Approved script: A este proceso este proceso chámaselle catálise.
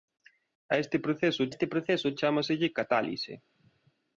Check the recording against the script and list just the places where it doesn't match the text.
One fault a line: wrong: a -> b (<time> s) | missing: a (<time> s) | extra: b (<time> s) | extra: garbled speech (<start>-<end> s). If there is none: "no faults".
no faults